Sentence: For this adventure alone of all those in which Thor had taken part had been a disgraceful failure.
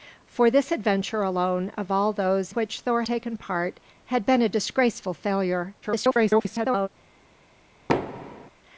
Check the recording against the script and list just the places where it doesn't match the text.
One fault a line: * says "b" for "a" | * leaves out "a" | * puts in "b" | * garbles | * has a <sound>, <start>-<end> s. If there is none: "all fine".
* leaves out "in"
* leaves out "had"
* garbles
* has a thud, 7.9-8.5 s